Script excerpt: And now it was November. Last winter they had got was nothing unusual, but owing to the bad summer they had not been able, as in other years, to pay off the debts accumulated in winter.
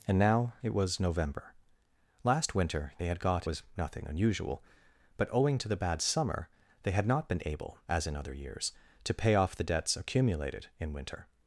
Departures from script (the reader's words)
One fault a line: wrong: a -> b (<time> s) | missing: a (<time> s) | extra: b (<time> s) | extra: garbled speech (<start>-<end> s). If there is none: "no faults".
no faults